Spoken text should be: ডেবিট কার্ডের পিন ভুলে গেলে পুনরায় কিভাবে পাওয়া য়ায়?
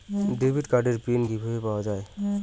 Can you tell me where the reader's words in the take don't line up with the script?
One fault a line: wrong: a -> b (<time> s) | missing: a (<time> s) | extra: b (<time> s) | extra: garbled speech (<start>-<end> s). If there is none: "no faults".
missing: ভুলে গেলে পুনরায় (1.2 s)